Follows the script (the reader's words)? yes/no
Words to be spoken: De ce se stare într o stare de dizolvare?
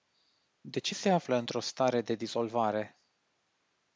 no